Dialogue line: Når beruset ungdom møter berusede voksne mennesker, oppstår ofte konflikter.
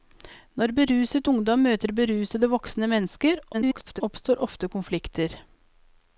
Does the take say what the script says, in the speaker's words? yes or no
no